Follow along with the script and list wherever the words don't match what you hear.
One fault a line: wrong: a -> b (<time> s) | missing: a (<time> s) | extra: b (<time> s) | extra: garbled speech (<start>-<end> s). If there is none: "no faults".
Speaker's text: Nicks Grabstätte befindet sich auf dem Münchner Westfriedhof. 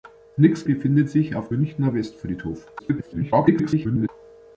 missing: Grabstätte (0.7 s)
missing: dem (1.5 s)
extra: garbled speech (2.8-4.1 s)